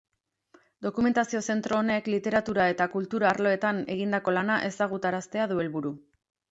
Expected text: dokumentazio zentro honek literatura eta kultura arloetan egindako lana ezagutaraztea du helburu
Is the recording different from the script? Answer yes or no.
no